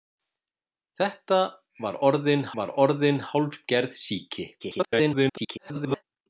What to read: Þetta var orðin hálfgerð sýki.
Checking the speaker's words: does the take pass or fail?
fail